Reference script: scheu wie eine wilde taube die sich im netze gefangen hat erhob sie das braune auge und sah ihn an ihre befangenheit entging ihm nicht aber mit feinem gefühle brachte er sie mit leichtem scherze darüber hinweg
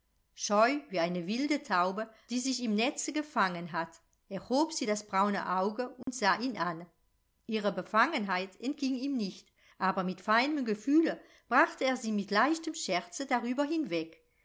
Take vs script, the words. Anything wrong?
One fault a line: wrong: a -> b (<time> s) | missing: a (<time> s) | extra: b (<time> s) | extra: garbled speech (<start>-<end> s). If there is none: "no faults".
no faults